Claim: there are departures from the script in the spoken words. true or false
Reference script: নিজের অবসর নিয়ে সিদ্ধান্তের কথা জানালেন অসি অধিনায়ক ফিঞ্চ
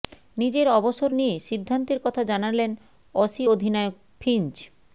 false